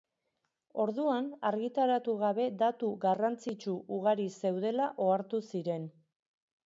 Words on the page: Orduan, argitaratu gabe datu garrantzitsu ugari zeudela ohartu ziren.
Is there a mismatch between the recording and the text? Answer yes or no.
no